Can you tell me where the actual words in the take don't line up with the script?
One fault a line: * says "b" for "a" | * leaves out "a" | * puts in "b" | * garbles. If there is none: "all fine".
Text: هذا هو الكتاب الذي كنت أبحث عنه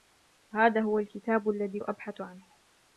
* leaves out "كنت"